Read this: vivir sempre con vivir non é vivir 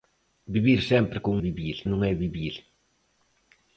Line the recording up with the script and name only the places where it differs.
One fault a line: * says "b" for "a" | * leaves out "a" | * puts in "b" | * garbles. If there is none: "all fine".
all fine